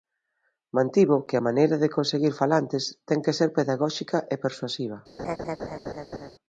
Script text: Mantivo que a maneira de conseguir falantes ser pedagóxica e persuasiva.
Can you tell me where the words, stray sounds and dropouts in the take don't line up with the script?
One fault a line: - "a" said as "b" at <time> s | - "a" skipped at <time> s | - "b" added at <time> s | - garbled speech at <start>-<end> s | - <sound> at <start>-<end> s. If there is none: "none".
- "ten que" added at 3.1 s
- laugh at 5.2-6.3 s